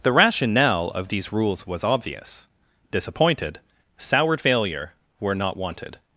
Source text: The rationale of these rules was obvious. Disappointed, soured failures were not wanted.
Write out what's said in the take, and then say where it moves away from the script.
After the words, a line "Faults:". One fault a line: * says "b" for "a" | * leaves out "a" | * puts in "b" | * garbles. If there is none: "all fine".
The rationale of these rules was obvious. Disappointed, soured failure were not wanted.
Faults:
* says "failure" for "failures"